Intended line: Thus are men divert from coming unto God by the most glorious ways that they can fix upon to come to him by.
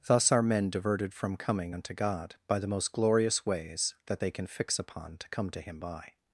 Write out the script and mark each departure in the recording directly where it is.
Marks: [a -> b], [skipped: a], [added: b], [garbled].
Thus are men [divert -> diverted] from coming unto God by the most glorious ways that they can fix upon to come to him by.